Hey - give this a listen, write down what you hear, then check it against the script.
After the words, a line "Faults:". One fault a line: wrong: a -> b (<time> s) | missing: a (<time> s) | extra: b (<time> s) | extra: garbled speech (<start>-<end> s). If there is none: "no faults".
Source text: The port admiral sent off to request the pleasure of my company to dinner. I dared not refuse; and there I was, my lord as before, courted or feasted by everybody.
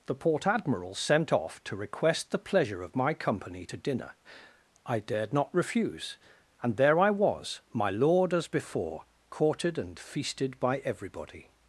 The port admiral sent off to request the pleasure of my company to dinner. I dared not refuse; and there I was, my lord as before, courted and feasted by everybody.
Faults:
wrong: or -> and (9.8 s)